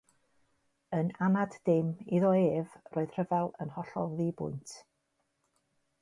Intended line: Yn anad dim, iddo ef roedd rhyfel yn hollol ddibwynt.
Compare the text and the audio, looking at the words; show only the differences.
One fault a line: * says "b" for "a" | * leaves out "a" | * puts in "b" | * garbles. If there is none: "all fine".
all fine